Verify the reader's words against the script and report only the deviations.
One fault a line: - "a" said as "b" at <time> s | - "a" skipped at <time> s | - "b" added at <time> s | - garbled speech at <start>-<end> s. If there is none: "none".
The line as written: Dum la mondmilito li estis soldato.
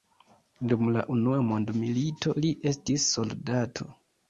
- "unua" added at 1.1 s